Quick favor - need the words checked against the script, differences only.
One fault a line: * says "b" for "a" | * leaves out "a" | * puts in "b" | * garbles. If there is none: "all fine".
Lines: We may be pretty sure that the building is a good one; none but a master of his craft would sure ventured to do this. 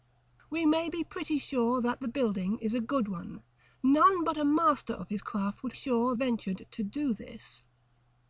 all fine